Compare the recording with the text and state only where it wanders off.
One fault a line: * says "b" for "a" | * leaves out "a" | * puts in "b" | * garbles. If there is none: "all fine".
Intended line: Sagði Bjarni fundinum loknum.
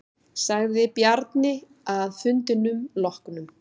* puts in "að"